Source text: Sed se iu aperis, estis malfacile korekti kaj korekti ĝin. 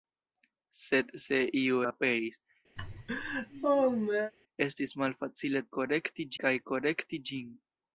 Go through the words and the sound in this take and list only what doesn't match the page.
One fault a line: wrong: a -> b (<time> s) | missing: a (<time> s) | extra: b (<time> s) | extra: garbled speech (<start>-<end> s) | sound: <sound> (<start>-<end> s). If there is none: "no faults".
sound: laugh (2.8-4.3 s)